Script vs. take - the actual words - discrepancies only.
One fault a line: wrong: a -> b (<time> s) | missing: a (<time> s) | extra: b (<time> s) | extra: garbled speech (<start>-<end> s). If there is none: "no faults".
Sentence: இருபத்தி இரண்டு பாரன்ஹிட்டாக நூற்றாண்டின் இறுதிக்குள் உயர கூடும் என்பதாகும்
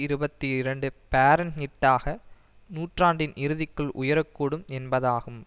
no faults